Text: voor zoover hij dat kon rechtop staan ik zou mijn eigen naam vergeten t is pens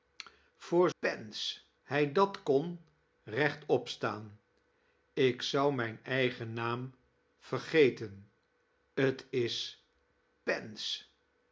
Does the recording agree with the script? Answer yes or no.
no